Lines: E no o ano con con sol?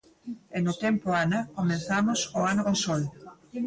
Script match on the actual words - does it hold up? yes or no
no